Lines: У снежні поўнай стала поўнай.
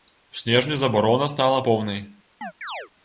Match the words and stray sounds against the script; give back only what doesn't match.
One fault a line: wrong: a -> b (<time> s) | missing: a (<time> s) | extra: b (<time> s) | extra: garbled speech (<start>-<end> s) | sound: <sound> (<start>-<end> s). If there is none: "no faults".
wrong: поўнай -> забарона (0.8 s)
sound: chirp (2.4-2.9 s)